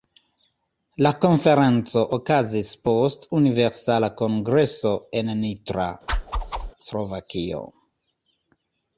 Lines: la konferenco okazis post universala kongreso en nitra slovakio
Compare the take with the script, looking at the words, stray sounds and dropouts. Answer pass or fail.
fail